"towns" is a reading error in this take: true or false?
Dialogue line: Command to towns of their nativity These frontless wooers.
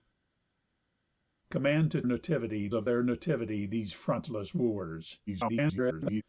true